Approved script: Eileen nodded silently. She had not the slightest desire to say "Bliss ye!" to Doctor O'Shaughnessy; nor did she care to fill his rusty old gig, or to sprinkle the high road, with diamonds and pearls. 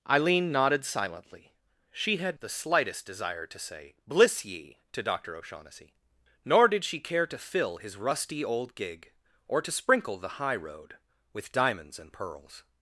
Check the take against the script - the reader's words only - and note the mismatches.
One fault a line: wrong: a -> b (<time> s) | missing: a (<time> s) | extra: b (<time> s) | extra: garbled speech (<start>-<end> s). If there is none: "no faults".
missing: not (2.4 s)